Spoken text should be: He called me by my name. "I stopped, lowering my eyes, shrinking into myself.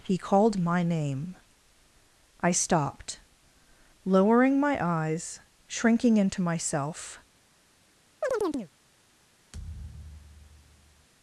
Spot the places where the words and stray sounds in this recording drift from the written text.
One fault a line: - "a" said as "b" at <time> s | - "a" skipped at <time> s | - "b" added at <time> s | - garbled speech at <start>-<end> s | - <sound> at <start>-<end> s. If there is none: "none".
- "me by" skipped at 0.6 s
- chirp at 8.2-8.7 s
- thud at 9.5-11.1 s